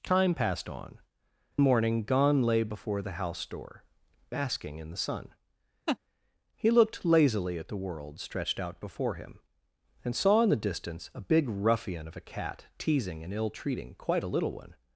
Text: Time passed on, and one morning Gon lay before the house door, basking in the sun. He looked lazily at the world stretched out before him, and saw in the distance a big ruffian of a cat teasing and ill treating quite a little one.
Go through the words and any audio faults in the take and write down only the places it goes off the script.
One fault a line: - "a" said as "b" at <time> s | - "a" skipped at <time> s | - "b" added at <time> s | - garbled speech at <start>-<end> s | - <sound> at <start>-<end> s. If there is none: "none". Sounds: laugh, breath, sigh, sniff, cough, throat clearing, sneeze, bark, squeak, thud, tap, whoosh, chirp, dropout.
- "and one" skipped at 1.0 s
- laugh at 5.9-6.0 s